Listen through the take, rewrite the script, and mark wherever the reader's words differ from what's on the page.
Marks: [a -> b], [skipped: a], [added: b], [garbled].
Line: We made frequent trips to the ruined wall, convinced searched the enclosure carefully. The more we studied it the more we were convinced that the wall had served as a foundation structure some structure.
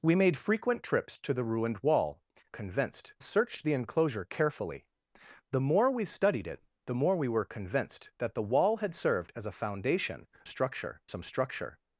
We made frequent trips to the ruined wall, convinced searched the enclosure carefully. The more we studied it the more we were convinced that the wall had served as a foundation structure some structure.